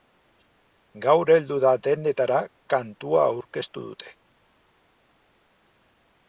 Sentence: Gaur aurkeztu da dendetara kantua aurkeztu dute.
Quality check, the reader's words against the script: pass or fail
fail